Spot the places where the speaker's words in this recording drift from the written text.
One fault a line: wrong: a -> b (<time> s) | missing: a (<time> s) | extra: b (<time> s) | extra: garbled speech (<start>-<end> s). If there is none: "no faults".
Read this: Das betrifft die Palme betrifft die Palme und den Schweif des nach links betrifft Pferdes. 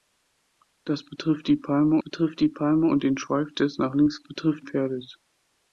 no faults